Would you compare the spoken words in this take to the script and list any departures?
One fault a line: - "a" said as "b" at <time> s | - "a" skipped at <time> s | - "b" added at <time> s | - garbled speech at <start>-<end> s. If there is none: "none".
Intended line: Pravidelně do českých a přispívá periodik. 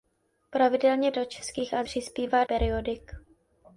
none